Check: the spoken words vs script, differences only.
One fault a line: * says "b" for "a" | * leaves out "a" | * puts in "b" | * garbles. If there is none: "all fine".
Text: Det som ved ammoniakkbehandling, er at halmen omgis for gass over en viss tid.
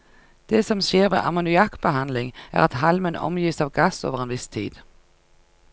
* puts in "skjer"
* says "av" for "for"